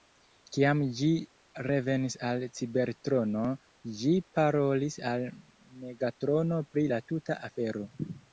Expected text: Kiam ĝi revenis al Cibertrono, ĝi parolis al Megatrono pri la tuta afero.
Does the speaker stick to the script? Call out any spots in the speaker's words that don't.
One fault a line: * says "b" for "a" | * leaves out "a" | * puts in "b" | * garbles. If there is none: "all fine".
all fine